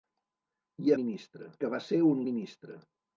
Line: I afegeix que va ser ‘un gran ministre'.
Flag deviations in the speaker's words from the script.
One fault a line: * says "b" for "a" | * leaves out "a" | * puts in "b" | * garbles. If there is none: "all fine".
* says "ministre" for "afegeix"
* leaves out "gran"